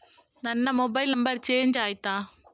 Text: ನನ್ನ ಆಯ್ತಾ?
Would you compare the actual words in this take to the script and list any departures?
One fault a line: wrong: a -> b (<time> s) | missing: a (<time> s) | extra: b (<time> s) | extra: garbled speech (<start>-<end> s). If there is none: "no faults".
extra: ಮೊಬೈಲ್ ನಂಬರ್ ಚೇಂಜ್ (0.7 s)